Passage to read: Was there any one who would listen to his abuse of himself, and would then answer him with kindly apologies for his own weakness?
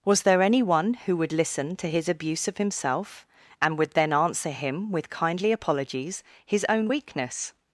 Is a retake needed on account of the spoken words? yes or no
yes